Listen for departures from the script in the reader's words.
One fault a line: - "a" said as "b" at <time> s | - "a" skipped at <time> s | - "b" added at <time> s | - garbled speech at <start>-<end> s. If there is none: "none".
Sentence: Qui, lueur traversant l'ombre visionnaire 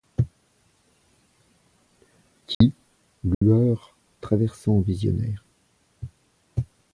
- "l'ombre" skipped at 4.8 s